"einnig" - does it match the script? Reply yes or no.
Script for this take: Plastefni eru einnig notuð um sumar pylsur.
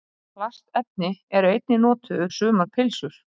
yes